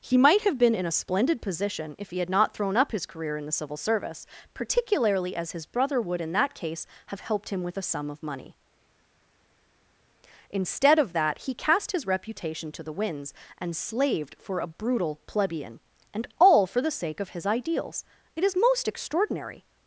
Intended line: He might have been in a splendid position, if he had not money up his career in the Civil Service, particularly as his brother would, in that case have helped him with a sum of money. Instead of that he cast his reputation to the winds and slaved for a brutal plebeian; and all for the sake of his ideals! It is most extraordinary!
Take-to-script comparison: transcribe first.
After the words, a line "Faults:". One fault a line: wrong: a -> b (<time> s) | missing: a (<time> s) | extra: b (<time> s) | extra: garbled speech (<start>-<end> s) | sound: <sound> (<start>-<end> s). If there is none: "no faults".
He might have been in a splendid position, if he had not thrown up his career in the Civil Service, particularly as his brother would, in that case have helped him with a sum of money. Instead of that he cast his reputation to the winds and slaved for a brutal plebeian; and all for the sake of his ideals! It is most extraordinary!
Faults:
wrong: money -> thrown (2.5 s)